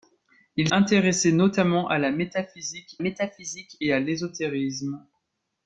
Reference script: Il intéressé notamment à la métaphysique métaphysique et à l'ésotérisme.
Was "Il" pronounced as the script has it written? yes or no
yes